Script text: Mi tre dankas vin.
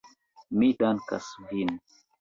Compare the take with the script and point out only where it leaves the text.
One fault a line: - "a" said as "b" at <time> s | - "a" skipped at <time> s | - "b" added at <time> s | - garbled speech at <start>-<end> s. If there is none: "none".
- "tre" skipped at 0.7 s